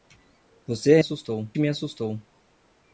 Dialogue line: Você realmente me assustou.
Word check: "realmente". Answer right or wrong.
wrong